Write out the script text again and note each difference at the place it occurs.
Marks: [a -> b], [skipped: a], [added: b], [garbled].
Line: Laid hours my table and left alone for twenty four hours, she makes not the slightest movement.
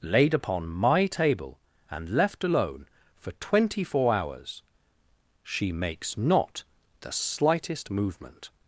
Laid [hours -> upon] my table and left alone for twenty four hours, she makes not the slightest movement.